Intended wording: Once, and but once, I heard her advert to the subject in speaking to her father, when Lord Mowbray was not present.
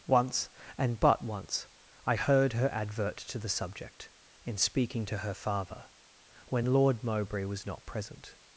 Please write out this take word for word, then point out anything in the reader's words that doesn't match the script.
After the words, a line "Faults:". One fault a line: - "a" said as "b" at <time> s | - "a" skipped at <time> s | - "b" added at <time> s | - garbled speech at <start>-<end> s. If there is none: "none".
Once, and but once, I heard her advert to the subject in speaking to her father, when Lord Mowbray was not present.
Faults:
none